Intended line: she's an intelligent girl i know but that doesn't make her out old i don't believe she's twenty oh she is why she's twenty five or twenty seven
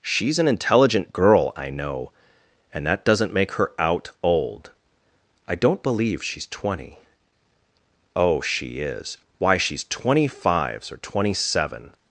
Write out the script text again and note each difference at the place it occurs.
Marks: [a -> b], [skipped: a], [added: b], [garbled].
she's an intelligent girl i know [but -> and] that doesn't make her out old i don't believe she's twenty oh she is why she's twenty [five -> fives] or twenty seven